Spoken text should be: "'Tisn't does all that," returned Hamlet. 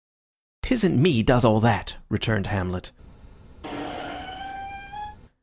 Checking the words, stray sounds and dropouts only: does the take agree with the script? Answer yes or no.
no